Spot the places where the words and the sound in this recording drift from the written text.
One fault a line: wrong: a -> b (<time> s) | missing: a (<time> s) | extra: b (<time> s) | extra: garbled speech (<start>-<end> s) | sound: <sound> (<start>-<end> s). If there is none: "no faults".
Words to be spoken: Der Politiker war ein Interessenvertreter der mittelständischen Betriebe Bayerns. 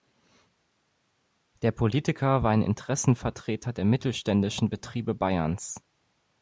no faults